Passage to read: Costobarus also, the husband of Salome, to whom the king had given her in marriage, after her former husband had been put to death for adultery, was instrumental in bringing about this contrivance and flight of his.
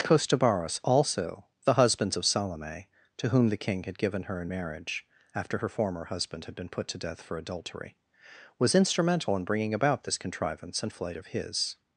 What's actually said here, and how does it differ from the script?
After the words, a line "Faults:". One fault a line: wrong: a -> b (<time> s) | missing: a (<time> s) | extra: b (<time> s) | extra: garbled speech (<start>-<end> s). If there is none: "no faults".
Costobarus also, the husbands of Salome, to whom the king had given her in marriage, after her former husband had been put to death for adultery, was instrumental in bringing about this contrivance and flight of his.
Faults:
wrong: husband -> husbands (1.8 s)